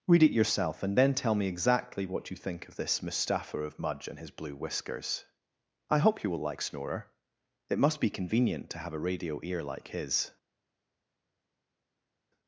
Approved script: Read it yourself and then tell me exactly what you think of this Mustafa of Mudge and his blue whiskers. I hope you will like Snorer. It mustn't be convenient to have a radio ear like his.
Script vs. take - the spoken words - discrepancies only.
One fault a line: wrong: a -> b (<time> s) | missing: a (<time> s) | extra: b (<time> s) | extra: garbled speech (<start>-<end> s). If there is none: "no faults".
wrong: mustn't -> must (7.8 s)